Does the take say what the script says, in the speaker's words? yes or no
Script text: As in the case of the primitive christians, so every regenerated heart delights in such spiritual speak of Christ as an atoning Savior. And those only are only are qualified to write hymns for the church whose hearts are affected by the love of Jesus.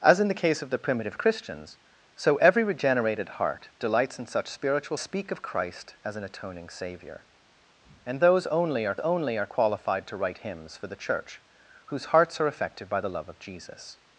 yes